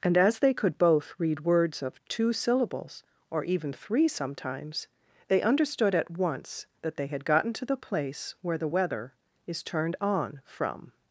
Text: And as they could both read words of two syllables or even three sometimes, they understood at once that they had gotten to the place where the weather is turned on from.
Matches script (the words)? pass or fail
pass